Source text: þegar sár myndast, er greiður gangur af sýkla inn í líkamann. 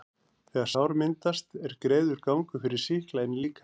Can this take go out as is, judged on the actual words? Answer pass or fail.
fail